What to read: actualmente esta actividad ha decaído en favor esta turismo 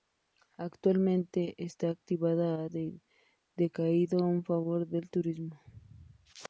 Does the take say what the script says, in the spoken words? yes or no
no